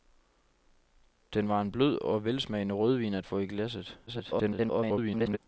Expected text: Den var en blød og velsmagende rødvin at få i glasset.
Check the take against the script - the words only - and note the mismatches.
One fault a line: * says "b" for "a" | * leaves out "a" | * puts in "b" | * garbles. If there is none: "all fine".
* garbles